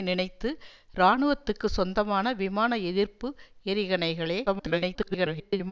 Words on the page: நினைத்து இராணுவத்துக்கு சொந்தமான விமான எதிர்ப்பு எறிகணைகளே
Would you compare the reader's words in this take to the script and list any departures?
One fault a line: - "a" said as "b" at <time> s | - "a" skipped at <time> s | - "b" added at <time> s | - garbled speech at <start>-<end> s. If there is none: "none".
- garbled speech at 4.5-5.7 s